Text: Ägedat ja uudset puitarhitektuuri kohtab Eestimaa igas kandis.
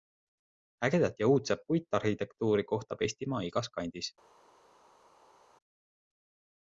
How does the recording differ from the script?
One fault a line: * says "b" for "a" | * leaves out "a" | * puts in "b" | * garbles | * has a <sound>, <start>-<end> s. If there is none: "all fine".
all fine